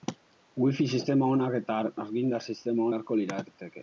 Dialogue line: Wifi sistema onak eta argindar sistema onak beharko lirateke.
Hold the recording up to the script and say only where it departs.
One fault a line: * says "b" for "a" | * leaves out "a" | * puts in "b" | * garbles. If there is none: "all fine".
* leaves out "onak"